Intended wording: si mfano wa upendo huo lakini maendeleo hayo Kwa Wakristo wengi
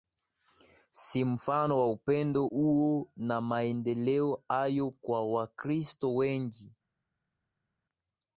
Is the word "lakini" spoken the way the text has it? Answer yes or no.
no